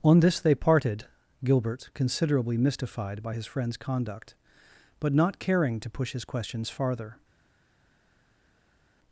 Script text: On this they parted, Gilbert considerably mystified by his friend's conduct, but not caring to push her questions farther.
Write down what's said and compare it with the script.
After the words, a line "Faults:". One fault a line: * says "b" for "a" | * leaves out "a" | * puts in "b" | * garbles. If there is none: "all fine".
On this they parted, Gilbert considerably mystified by his friend's conduct, but not caring to push his questions farther.
Faults:
* says "his" for "her"